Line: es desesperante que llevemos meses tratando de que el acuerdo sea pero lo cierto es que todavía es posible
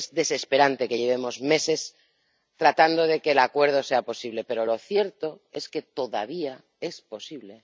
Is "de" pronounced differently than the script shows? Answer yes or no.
no